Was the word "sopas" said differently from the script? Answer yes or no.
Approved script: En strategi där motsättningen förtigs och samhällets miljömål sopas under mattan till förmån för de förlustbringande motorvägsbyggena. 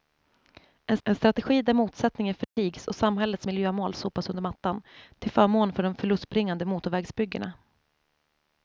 no